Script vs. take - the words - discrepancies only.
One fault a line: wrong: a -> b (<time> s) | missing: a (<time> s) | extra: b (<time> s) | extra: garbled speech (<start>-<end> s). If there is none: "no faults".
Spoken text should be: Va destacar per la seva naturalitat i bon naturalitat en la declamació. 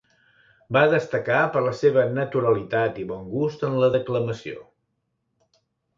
wrong: naturalitat -> gust (3.4 s)